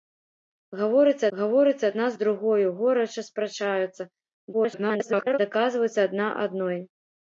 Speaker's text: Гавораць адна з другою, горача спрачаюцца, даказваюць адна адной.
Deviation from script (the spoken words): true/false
true